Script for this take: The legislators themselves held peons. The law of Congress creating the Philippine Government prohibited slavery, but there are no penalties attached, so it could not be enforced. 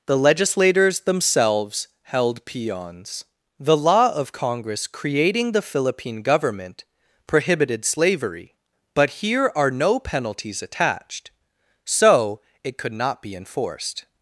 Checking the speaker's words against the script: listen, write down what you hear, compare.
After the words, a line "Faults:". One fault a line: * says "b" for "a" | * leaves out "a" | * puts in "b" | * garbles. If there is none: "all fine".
The legislators themselves held peons. The law of Congress creating the Philippine Government prohibited slavery, but here are no penalties attached, so it could not be enforced.
Faults:
* says "here" for "there"